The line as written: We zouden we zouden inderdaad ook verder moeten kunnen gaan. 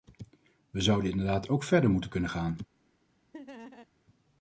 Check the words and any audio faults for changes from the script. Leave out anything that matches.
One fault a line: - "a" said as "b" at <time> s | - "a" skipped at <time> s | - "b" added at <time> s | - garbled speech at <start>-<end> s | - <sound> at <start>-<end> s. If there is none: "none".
- "we zouden" skipped at 1.1 s
- laugh at 3.3-3.9 s